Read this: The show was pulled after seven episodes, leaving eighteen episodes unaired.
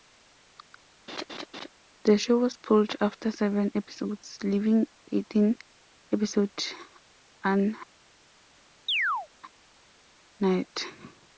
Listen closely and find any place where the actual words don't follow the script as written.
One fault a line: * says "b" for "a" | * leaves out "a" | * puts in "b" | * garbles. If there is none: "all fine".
all fine